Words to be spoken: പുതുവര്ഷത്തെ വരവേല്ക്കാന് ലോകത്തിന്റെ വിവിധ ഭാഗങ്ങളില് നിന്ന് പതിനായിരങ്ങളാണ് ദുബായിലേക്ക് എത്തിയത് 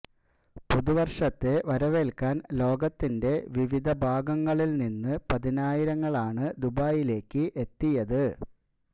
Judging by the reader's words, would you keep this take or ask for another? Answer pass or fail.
pass